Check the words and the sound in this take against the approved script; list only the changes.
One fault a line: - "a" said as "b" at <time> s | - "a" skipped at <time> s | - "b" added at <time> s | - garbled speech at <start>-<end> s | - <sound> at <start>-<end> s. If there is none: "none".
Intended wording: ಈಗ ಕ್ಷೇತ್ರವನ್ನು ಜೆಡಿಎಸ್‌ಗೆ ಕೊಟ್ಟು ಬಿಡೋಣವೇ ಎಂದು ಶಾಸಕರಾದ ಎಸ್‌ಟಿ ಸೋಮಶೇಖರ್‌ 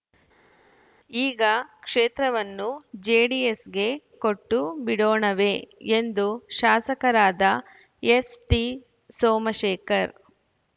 none